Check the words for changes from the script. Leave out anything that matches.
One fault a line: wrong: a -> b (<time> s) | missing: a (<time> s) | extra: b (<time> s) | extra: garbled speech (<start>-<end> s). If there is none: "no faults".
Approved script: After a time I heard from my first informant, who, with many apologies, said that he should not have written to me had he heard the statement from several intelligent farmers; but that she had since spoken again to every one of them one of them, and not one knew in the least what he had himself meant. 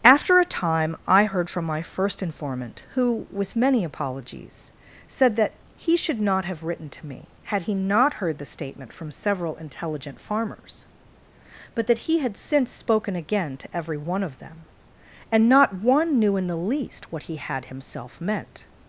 extra: not (7.7 s)
wrong: she -> he (12.1 s)
missing: one of them (14.7 s)